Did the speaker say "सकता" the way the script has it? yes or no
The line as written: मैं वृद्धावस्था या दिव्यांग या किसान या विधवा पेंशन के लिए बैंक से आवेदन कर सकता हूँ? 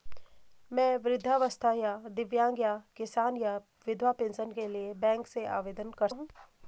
no